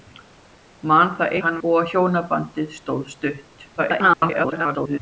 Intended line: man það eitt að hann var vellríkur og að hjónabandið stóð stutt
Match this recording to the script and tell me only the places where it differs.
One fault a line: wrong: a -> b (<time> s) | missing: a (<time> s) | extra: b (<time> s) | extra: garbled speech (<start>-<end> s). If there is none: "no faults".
missing: eitt (1.4 s)
missing: var vellríkur (1.6 s)
extra: garbled speech (3.8-5.0 s)